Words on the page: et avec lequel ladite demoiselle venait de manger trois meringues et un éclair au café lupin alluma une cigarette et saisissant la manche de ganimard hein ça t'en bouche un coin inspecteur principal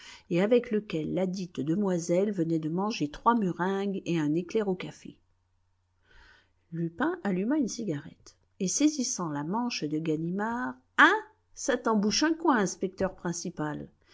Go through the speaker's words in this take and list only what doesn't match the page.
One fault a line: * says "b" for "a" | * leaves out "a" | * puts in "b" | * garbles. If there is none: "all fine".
all fine